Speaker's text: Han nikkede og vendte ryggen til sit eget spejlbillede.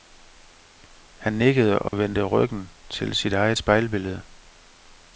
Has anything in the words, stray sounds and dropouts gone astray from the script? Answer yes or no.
yes